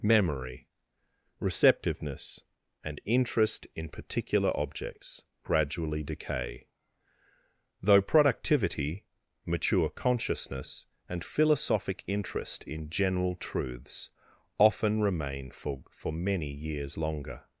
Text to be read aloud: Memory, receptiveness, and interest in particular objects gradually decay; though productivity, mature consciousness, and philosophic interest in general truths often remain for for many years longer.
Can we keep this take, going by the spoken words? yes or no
yes